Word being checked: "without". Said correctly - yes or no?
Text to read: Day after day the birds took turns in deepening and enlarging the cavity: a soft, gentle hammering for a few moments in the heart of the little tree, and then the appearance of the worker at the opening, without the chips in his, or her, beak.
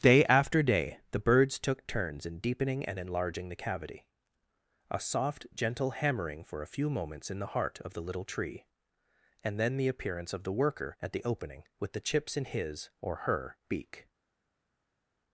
no